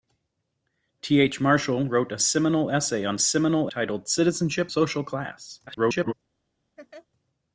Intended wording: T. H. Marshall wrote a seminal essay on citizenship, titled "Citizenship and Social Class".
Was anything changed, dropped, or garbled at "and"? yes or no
yes